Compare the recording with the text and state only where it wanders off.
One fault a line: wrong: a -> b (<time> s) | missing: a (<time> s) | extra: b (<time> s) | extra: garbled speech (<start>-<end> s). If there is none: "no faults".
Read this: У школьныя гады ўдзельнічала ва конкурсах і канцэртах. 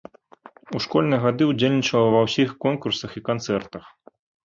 extra: ўсіх (2.3 s)